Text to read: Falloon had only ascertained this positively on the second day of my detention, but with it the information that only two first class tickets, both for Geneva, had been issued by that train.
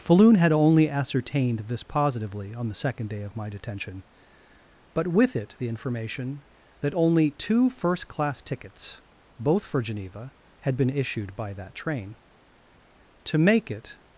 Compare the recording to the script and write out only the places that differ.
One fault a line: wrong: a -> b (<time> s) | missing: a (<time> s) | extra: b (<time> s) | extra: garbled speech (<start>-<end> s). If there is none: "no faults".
extra: To make it (13.2 s)